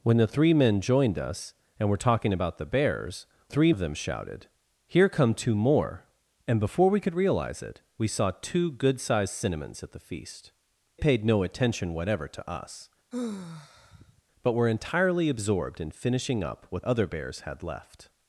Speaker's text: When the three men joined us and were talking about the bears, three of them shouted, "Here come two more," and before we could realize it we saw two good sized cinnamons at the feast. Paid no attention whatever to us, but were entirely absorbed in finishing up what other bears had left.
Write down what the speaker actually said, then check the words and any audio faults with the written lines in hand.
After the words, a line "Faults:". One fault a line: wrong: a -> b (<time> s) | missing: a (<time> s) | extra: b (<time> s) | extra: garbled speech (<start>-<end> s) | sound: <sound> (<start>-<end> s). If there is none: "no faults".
When the three men joined us and were talking about the bears, three of them shouted, "Here come two more," and before we could realize it we saw two good sized cinnamons at the feast. Paid no attention whatever to us, but were entirely absorbed in finishing up what other bears had left.
Faults:
sound: sigh (13.1-14.2 s)